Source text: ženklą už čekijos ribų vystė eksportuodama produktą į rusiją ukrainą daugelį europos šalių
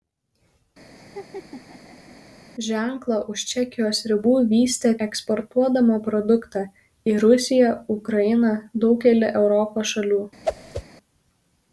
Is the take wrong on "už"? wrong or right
right